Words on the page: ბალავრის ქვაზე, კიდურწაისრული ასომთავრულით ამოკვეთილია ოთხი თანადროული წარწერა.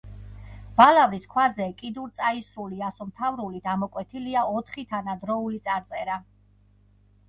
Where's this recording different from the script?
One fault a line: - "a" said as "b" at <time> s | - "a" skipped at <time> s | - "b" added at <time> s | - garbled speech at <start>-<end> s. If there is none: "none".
none